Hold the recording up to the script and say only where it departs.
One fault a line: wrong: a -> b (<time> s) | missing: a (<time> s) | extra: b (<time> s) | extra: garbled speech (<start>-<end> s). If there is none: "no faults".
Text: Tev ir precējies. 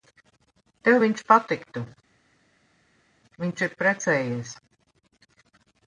extra: viņš patiktu Viņš (1.0 s)